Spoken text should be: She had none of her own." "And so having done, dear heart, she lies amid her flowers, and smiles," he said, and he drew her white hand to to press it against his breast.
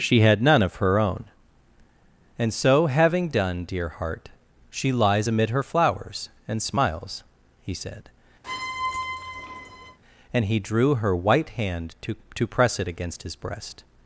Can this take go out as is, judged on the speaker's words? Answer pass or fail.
pass